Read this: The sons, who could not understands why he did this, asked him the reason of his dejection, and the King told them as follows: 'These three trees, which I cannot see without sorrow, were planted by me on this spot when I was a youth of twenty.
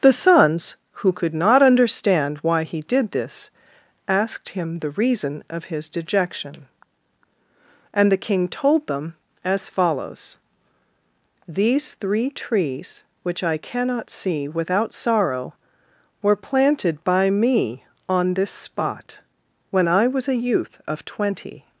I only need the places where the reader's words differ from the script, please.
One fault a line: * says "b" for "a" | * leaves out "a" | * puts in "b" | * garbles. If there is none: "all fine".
* says "understand" for "understands"